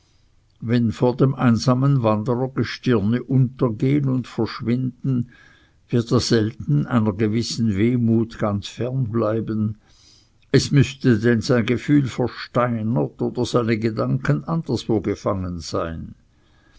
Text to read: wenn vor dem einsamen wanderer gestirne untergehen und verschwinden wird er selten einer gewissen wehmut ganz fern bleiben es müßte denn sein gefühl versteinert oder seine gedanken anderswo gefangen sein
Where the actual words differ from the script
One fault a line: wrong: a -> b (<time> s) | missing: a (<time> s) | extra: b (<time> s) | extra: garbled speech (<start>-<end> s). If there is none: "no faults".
no faults